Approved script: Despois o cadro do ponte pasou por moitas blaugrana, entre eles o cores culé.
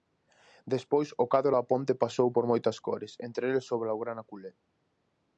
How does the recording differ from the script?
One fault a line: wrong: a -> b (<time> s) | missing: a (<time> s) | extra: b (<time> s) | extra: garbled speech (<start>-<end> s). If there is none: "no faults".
wrong: do -> da (1.6 s)
wrong: blaugrana -> cores (2.9 s)
wrong: cores -> blaugrana (3.8 s)